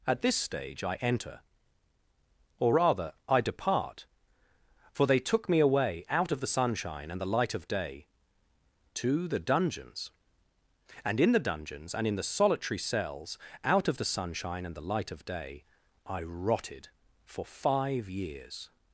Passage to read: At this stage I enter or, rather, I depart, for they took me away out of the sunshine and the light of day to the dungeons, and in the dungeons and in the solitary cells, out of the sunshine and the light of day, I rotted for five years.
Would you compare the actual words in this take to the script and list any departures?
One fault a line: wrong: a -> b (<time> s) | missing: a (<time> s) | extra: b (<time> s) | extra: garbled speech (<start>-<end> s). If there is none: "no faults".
no faults